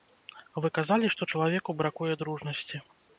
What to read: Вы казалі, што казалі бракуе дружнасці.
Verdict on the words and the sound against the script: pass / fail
fail